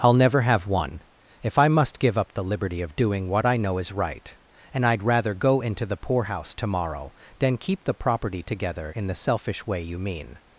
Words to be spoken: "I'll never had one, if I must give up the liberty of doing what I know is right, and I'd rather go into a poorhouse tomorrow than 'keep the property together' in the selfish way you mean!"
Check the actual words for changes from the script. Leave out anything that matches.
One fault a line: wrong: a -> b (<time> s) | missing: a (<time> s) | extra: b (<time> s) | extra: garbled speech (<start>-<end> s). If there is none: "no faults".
wrong: had -> have (0.4 s)
wrong: a -> the (5.8 s)